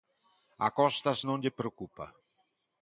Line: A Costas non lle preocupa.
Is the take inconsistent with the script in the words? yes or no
no